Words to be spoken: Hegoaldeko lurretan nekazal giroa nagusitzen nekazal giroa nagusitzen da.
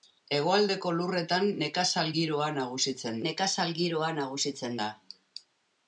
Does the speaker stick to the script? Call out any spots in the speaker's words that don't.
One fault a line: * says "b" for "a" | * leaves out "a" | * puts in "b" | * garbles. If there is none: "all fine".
all fine